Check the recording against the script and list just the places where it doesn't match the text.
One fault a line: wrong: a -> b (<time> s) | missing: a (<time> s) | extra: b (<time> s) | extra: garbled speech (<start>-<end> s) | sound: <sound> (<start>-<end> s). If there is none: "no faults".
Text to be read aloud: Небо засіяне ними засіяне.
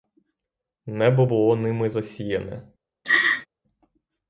wrong: засіяне -> було (1.2 s)
sound: laugh (3.0-3.5 s)